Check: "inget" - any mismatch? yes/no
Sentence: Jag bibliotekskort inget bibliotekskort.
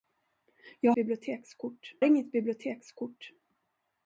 no